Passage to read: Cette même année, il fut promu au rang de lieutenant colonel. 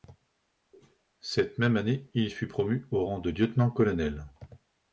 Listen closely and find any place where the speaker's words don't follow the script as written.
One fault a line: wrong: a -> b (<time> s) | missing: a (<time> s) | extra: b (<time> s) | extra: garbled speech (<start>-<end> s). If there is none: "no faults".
no faults